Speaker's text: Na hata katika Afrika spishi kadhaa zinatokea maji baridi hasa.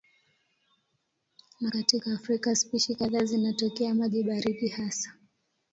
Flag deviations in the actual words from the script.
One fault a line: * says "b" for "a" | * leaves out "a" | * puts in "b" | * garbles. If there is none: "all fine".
* leaves out "hata"